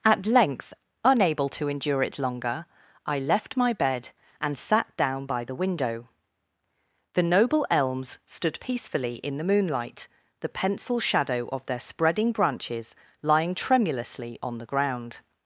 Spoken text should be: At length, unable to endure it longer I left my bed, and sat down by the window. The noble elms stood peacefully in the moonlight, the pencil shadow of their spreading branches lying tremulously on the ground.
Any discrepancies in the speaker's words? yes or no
no